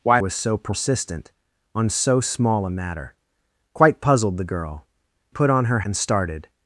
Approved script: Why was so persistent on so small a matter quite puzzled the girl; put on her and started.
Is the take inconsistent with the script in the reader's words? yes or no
no